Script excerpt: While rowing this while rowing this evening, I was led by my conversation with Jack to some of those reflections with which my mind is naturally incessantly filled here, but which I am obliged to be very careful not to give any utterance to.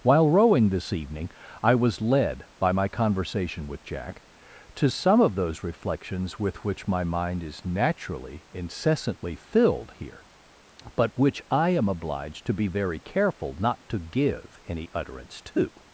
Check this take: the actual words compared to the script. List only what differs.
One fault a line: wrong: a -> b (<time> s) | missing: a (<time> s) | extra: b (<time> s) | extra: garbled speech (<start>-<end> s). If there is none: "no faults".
missing: while rowing this (0.9 s)